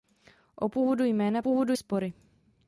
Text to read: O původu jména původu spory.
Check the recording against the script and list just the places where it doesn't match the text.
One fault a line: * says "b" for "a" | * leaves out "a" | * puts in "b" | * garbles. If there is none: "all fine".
all fine